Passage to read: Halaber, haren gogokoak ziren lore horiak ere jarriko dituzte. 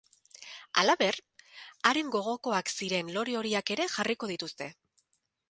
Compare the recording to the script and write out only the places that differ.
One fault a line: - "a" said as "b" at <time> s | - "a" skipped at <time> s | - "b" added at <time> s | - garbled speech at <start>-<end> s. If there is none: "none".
none